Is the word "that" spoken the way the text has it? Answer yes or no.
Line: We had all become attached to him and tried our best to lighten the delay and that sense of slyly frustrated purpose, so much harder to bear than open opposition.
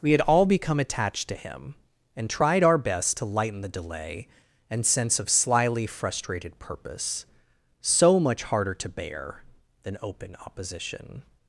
no